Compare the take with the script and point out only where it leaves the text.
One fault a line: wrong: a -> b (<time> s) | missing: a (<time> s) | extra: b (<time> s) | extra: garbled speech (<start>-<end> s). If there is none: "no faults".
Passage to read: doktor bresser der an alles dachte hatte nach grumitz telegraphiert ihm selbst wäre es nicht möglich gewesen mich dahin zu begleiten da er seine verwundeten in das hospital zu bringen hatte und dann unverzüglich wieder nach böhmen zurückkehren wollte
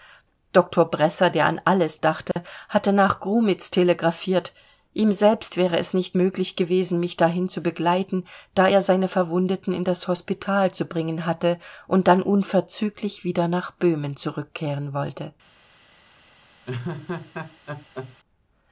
no faults